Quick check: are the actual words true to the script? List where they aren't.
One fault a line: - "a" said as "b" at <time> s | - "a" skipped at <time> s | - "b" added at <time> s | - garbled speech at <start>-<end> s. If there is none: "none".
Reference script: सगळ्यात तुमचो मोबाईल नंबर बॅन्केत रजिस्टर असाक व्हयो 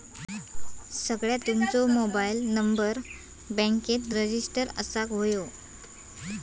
none